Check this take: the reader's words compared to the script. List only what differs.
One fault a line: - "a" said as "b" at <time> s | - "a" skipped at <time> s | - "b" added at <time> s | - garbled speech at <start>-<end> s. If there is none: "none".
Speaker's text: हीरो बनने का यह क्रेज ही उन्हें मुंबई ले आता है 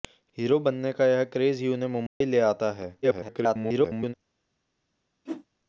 - garbled speech at 3.0-4.1 s